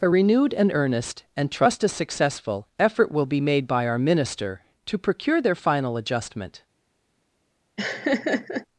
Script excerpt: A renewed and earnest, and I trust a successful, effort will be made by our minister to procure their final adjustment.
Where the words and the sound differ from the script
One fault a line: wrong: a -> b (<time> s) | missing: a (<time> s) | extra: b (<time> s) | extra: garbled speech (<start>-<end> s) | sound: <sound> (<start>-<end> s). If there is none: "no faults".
missing: I (1.5 s)
sound: laugh (7.8-8.7 s)